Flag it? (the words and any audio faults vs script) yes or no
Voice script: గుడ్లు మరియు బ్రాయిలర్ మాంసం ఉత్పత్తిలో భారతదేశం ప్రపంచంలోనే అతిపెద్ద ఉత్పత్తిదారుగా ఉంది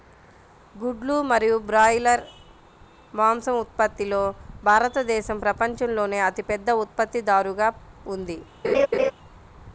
yes